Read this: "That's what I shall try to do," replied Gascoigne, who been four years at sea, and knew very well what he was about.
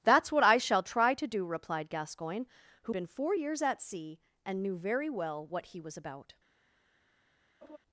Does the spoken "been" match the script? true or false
true